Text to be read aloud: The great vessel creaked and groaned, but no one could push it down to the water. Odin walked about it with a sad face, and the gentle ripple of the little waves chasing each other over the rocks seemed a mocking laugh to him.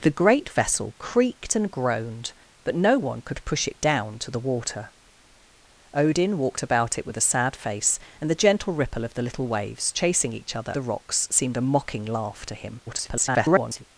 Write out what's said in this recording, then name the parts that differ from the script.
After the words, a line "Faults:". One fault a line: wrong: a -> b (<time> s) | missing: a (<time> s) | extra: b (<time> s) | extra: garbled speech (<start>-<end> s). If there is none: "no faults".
The great vessel creaked and groaned, but no one could push it down to the water. Odin walked about it with a sad face, and the gentle ripple of the little waves chasing each other the rocks seemed a mocking laugh to him. [garbled]
Faults:
missing: over (10.8 s)
extra: garbled speech (12.9-13.8 s)